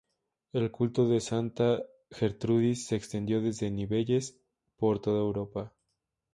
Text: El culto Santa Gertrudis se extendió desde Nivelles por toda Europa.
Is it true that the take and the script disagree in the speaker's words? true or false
true